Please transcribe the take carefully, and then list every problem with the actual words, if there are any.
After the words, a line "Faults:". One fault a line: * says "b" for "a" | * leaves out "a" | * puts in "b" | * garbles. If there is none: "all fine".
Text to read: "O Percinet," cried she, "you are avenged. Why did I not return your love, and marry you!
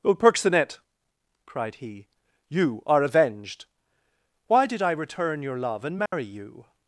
"O Percinet," cried he, "you are avenged. Why did I return your love, and marry you!
Faults:
* says "he" for "she"
* leaves out "not"